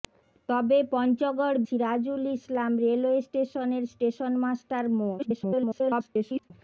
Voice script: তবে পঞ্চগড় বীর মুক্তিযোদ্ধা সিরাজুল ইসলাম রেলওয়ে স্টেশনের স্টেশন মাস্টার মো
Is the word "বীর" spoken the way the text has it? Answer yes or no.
no